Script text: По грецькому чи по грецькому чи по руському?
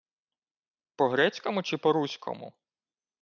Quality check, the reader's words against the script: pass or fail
fail